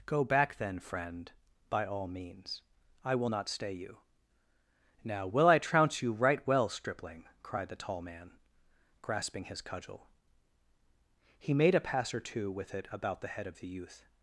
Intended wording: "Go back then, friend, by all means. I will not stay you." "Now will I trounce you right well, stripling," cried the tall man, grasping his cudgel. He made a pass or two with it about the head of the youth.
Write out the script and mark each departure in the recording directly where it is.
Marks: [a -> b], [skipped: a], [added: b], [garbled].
"Go back then, friend, by all means. I will not stay you." "Now will I trounce you right well, stripling," cried the tall man, grasping his cudgel. He made a pass or two with it about the head of the youth.